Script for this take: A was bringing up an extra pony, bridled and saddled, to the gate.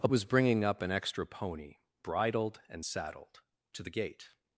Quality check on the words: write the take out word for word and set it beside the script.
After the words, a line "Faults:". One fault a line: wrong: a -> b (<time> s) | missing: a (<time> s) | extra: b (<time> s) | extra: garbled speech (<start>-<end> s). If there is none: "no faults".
A was bringing up an extra pony, bridled and saddled, to the gate.
Faults:
no faults